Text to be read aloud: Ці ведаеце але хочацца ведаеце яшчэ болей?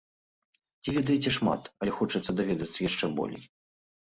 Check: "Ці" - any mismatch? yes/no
no